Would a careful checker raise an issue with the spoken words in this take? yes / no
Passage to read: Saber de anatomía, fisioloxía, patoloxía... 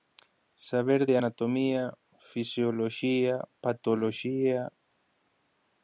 no